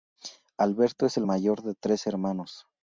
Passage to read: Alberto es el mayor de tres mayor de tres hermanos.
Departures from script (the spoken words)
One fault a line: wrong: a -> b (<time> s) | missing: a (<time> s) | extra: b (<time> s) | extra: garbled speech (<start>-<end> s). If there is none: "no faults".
missing: mayor de tres (2.0 s)